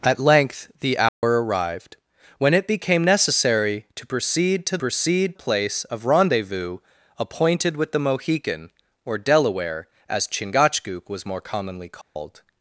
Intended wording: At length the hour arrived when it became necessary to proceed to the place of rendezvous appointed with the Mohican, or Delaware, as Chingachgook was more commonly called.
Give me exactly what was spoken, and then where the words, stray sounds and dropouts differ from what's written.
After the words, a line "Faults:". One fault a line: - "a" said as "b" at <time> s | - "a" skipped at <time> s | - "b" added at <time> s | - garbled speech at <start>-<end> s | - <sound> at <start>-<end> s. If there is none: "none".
At length the hour arrived when it became necessary to proceed to proceed place of rendezvous appointed with the Mohican, or Delaware, as Chingachgook was more commonly called.
Faults:
- dropout at 1.1-1.2 s
- "the" said as "proceed" at 4.8 s
- dropout at 12.0-12.2 s